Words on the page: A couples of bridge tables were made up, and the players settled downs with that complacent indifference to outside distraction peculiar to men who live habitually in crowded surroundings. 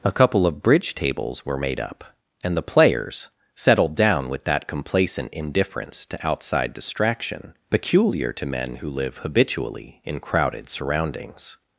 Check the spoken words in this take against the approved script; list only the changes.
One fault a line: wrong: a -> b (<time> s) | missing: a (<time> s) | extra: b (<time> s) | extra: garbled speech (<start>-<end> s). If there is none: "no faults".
wrong: couples -> couple (0.1 s)
wrong: downs -> down (4.0 s)